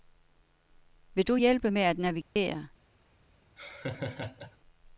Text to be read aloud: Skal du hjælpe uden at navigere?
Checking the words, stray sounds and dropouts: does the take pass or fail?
fail